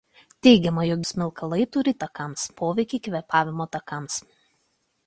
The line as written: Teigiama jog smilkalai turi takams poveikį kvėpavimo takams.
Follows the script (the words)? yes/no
yes